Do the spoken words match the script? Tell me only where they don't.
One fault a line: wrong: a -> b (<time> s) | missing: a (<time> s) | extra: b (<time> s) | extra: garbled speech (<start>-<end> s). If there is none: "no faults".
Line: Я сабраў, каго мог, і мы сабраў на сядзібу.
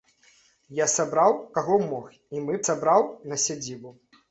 no faults